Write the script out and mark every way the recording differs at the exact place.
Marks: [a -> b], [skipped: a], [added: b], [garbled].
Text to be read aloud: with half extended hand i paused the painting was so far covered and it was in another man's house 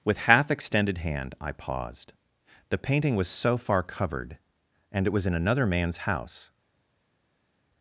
with half extended hand i paused the painting was so far covered and it was in another man's house